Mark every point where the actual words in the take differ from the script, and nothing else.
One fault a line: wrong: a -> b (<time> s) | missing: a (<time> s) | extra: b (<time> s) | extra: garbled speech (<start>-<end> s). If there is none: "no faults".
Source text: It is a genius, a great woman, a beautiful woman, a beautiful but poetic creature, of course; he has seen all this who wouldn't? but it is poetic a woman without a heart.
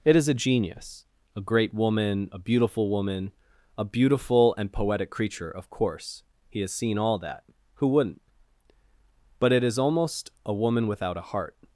wrong: but -> and (4.6 s)
wrong: this -> that (7.2 s)
wrong: poetic -> almost (9.8 s)